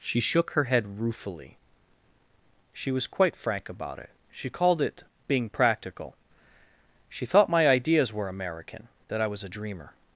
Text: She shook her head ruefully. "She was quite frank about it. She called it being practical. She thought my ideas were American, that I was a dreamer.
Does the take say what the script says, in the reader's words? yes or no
yes